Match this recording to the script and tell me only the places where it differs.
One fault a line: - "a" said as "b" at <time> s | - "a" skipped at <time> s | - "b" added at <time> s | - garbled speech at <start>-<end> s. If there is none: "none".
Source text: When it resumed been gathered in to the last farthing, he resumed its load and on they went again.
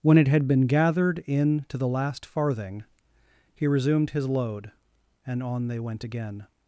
- "resumed" said as "had" at 0.3 s
- "its" said as "his" at 4.1 s